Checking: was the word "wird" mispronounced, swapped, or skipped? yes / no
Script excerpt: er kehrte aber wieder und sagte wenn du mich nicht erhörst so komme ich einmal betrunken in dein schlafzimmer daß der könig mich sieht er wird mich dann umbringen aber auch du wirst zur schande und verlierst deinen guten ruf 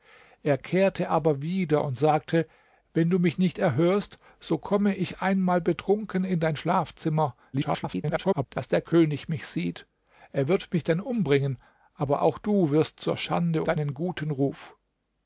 no